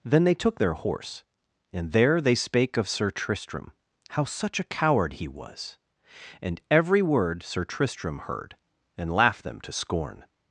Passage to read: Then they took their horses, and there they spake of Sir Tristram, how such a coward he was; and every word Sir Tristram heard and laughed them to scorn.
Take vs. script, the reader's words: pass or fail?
fail